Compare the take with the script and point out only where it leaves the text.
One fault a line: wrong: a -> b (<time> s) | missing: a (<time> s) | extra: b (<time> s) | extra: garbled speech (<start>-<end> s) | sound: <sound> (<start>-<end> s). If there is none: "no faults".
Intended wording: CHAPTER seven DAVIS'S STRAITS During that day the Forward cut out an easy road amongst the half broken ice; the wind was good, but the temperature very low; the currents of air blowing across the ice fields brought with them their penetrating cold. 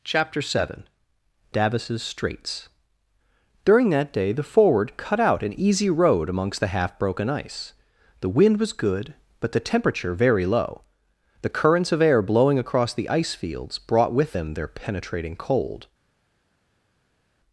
no faults